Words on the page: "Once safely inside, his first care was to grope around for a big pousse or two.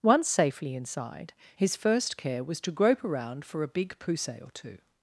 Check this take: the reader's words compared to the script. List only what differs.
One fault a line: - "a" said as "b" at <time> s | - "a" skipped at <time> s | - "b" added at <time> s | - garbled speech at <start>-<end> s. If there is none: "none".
none